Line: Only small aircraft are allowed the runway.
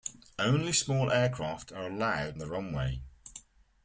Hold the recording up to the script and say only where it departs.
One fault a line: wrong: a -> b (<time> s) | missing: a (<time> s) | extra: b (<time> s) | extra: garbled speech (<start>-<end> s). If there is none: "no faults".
no faults